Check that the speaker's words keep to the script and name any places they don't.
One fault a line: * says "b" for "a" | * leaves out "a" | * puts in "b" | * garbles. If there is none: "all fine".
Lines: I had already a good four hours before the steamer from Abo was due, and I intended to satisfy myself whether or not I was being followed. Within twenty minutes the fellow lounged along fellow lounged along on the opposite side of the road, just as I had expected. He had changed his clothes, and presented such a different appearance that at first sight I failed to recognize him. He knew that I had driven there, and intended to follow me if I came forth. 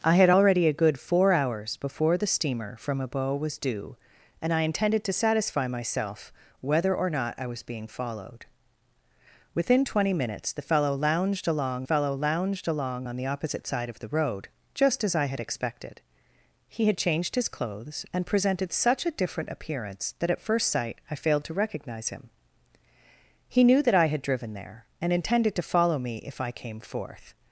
all fine